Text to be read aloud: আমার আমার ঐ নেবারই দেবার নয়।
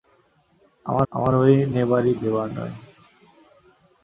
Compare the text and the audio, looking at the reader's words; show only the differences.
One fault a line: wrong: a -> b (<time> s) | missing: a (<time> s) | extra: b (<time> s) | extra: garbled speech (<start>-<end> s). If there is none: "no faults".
no faults